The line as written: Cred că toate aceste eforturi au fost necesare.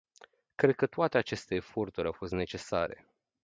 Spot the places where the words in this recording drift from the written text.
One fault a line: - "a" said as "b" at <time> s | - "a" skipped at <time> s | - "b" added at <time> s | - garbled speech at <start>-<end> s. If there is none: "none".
none